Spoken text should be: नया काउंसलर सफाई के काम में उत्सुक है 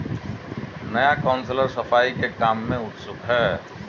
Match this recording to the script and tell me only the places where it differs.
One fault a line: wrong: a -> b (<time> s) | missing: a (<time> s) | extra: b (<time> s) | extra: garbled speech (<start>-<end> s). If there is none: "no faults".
no faults